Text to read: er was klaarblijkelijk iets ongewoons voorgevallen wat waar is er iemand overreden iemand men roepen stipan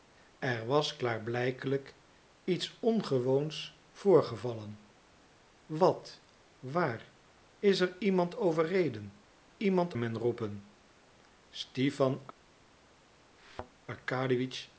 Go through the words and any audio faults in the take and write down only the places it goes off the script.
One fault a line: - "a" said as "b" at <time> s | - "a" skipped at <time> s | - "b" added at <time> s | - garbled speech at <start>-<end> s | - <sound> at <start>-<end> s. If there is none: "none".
- thud at 13.4-13.7 s